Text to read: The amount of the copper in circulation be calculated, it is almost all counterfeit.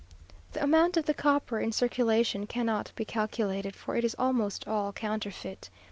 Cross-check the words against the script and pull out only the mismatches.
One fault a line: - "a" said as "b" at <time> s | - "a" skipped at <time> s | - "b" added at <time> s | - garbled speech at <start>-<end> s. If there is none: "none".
- "cannot" added at 2.5 s
- "for" added at 3.8 s